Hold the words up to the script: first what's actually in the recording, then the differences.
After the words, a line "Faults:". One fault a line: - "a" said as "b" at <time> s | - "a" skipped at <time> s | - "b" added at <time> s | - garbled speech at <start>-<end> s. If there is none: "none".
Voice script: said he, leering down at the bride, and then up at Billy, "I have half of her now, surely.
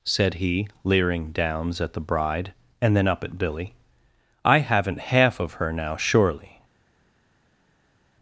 said he, leering downs at the bride, and then up at Billy, "I haven't half of her now, surely.
Faults:
- "down" said as "downs" at 1.3 s
- "have" said as "haven't" at 4.6 s